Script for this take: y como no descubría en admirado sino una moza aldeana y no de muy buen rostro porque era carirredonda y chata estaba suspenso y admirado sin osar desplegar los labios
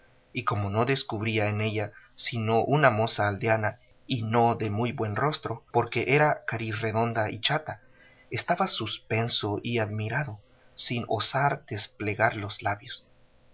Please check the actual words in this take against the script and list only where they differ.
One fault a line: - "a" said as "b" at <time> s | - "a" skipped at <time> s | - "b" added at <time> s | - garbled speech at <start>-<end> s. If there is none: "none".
- "admirado" said as "ella" at 1.6 s